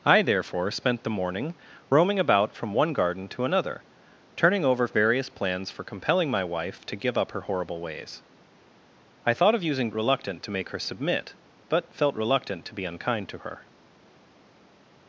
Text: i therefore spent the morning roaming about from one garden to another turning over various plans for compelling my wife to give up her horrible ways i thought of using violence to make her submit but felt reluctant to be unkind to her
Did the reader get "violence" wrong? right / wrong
wrong